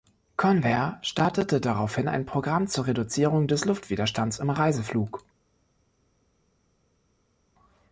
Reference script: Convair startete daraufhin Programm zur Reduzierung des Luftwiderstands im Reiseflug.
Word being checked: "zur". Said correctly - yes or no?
yes